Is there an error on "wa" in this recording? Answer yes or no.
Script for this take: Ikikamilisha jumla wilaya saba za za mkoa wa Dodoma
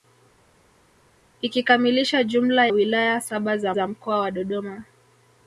no